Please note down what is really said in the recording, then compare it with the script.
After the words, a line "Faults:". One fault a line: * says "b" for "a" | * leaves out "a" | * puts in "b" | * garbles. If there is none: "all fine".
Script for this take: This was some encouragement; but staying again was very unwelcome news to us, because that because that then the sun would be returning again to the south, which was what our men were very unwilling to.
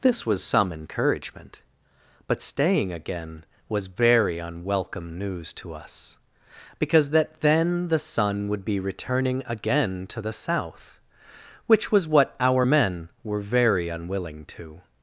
This was some encouragement; but staying again was very unwelcome news to us, because that then the sun would be returning again to the south, which was what our men were very unwilling to.
Faults:
* leaves out "because that"